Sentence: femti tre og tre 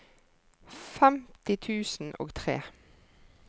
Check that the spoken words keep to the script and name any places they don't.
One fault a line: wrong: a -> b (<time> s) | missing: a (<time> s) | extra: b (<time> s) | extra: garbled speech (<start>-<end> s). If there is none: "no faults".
wrong: tre -> tusen (1.6 s)